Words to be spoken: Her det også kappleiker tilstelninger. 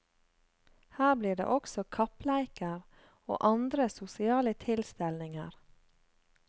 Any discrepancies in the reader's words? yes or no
yes